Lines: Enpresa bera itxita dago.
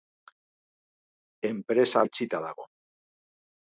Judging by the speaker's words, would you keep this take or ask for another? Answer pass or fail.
fail